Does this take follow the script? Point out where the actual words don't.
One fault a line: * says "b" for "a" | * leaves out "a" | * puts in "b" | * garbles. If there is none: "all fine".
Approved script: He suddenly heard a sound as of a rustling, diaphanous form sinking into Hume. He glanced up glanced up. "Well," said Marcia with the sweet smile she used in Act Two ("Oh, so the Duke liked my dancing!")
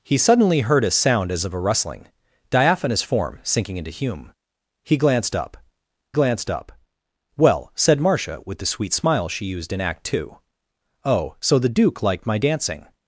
all fine